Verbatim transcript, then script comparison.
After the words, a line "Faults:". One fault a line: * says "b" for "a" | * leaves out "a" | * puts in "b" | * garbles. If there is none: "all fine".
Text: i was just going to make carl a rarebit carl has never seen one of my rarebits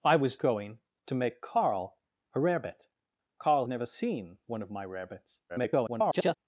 i was going to make carl a rarebit carl never seen one of my rarebits [garbled]
Faults:
* leaves out "just"
* leaves out "has"
* garbles